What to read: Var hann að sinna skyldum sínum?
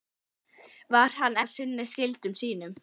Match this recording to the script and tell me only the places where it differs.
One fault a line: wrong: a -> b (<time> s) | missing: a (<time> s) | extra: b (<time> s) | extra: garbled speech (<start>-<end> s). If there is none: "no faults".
no faults